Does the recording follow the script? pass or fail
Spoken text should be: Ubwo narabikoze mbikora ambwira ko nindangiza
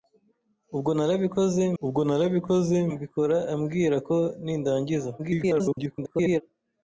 fail